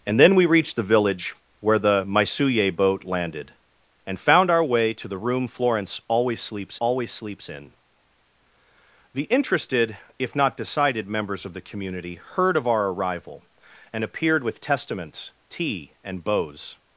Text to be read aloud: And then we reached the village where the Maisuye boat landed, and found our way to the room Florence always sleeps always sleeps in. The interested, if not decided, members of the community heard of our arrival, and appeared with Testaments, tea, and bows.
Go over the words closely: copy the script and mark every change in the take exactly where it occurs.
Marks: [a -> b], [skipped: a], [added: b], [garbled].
And then we reached the village where the Maisuye boat landed, and found our way to the room Florence always sleeps always sleeps in. The interested, if not decided, members of the community heard of our arrival, and appeared with Testaments, tea, and bows.